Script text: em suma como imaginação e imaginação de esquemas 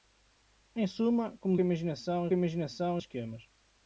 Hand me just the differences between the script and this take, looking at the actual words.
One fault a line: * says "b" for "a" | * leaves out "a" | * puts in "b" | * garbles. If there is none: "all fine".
all fine